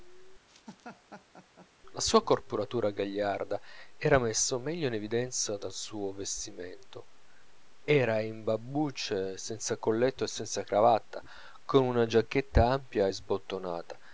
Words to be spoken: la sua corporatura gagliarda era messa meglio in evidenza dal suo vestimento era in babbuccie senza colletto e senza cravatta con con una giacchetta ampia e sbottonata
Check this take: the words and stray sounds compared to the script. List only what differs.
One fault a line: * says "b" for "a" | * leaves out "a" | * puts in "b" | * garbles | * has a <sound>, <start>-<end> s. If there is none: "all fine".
* has a laugh, 0.5-1.7 s
* leaves out "con"